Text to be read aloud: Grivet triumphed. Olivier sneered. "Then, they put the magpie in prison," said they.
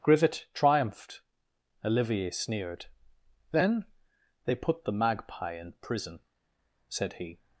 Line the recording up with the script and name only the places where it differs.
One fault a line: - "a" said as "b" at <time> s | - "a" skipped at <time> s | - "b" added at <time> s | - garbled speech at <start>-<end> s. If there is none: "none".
- "they" said as "he" at 7.1 s